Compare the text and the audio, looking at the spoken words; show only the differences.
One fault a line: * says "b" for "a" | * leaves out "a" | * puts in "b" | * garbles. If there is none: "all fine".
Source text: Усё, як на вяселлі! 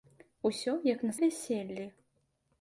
all fine